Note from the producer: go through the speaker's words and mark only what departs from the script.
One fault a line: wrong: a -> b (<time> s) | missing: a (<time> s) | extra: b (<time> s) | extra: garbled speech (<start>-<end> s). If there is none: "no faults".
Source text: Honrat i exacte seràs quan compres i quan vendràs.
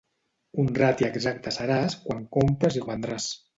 missing: quan (2.9 s)